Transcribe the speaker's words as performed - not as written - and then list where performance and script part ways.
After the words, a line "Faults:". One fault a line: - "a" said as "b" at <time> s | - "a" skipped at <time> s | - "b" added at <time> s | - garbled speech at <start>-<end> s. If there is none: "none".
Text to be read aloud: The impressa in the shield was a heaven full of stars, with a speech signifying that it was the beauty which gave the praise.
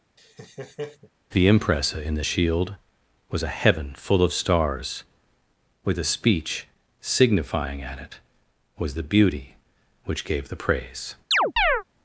The impressa in the shield was a heaven full of stars, with a speech signifying at it was the beauty which gave the praise.
Faults:
- "that" said as "at" at 7.8 s